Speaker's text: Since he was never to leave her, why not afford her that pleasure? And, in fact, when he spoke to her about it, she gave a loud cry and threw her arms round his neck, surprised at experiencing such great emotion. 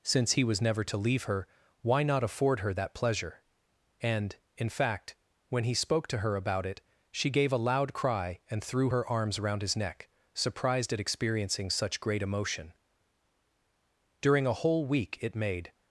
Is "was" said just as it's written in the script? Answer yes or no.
yes